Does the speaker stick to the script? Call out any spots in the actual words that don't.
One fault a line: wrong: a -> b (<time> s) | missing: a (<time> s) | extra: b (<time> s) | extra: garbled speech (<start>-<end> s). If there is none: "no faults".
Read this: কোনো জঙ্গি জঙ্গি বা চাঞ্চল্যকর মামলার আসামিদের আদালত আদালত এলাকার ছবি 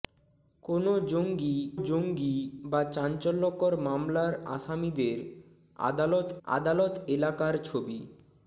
no faults